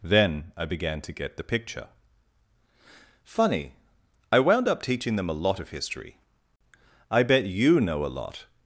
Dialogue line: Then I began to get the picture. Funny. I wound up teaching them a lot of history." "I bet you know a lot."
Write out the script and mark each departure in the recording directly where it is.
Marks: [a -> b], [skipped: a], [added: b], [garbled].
Then I began to get the picture. Funny. I wound up teaching them a lot of history." "I bet you know a lot."